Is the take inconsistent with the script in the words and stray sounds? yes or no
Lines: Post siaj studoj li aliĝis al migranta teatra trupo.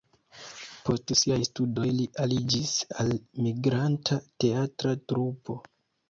no